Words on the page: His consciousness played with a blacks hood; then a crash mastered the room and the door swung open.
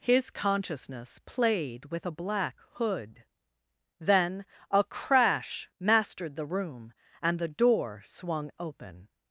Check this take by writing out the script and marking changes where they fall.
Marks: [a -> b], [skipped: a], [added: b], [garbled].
His consciousness played with a [blacks -> black] hood; then a crash mastered the room and the door swung open.